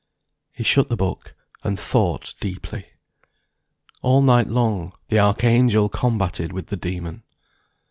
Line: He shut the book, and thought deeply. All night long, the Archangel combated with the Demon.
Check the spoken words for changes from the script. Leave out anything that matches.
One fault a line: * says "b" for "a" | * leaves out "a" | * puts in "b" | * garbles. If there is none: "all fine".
all fine